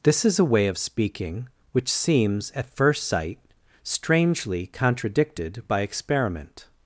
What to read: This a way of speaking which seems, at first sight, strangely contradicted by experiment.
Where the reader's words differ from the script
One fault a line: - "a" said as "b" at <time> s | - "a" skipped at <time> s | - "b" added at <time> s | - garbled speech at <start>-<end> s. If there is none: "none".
- "is" added at 0.2 s